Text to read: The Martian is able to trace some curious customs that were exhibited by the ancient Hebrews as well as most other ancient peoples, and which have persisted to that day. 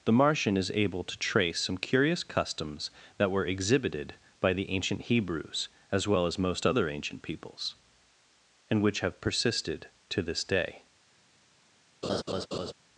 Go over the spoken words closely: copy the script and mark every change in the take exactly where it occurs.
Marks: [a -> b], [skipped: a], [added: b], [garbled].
The Martian is able to trace some curious customs that were exhibited by the ancient Hebrews as well as most other ancient peoples, and which have persisted to [that -> this] day.